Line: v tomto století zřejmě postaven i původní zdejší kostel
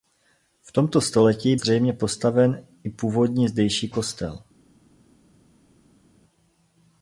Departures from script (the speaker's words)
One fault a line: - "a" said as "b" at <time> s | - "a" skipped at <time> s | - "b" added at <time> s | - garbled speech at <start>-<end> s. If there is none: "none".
none